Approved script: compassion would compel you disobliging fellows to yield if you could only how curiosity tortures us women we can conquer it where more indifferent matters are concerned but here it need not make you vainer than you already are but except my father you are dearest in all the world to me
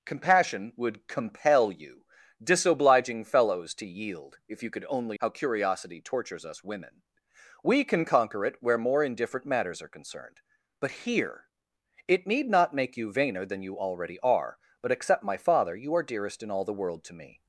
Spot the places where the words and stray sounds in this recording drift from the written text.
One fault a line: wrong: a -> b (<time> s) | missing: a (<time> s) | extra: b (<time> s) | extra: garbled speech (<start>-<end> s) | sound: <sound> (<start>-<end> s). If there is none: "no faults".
no faults